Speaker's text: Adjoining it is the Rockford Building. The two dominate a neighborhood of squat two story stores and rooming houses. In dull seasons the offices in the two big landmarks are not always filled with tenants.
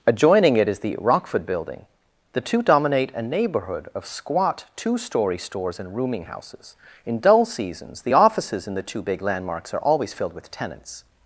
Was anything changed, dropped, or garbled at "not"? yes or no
yes